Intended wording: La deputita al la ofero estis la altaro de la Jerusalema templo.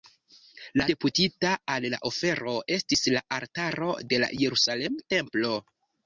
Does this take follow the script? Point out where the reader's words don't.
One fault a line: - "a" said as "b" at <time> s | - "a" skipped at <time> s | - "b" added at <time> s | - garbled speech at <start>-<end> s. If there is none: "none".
none